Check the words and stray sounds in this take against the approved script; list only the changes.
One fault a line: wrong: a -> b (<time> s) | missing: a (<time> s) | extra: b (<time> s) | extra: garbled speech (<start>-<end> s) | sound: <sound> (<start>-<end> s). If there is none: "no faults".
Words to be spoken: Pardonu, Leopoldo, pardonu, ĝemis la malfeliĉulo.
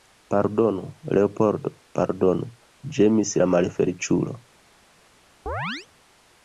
sound: chirp (5.5-5.9 s)